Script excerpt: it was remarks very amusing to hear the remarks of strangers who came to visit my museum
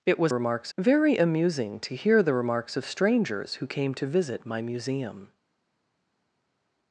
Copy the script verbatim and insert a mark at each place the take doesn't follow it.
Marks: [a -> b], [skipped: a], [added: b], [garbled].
it was remarks very amusing to hear the remarks of strangers who came to visit my museum